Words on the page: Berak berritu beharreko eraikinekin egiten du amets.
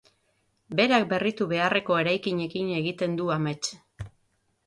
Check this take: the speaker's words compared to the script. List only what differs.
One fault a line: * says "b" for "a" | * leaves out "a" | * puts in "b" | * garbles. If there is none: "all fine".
all fine